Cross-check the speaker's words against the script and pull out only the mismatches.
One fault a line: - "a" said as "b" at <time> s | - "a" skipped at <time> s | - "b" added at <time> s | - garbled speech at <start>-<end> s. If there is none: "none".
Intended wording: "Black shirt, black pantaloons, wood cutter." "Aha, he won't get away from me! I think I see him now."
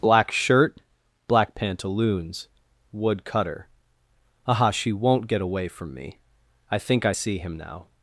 - "he" said as "she" at 4.7 s